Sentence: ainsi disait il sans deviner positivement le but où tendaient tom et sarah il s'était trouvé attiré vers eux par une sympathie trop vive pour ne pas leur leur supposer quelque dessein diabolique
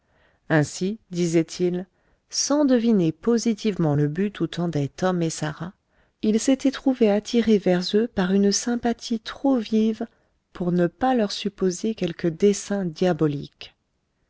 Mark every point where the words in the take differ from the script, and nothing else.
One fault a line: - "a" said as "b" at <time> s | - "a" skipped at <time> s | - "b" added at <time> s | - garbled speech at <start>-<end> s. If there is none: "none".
- "leur" skipped at 11.3 s